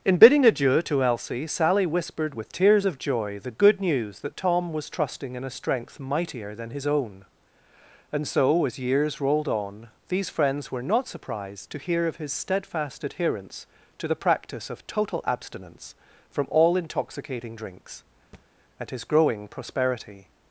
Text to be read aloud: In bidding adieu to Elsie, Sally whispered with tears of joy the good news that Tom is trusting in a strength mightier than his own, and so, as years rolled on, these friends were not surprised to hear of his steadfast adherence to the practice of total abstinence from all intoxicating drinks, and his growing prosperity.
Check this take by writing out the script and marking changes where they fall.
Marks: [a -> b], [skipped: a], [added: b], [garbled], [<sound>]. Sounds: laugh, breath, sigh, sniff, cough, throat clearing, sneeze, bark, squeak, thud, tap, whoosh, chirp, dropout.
In bidding adieu to Elsie, Sally whispered with tears of joy the good news that Tom [is -> was] trusting in a strength mightier than his own, and so, as years rolled on, these friends were not surprised to hear of his steadfast adherence to the practice of total abstinence from all intoxicating drinks, [thud] and his growing prosperity.